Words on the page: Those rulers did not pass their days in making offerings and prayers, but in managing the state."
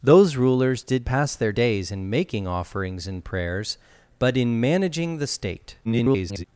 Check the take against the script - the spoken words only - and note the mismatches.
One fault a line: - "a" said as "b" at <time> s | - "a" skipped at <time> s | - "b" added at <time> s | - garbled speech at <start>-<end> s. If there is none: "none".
- "not" skipped at 1.1 s
- garbled speech at 5.8-6.4 s